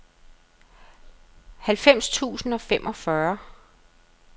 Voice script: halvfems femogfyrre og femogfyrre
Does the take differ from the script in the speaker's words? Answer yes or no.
yes